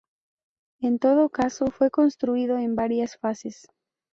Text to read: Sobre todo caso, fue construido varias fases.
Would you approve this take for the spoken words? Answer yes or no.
no